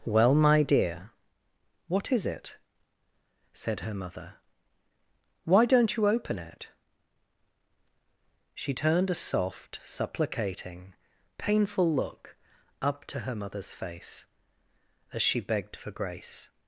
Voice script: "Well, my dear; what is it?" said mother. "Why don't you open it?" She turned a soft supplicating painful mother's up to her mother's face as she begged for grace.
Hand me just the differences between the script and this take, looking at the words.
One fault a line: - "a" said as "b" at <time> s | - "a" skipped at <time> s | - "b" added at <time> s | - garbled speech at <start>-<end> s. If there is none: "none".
- "her" added at 3.8 s
- "mother's" said as "look" at 11.9 s